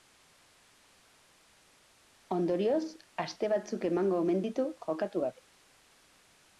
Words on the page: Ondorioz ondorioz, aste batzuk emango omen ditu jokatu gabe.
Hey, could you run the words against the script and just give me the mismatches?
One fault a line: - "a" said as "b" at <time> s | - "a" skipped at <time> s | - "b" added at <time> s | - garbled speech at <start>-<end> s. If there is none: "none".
- "ondorioz" skipped at 2.8 s